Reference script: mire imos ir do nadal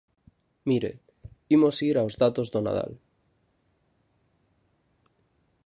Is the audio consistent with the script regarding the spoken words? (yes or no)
no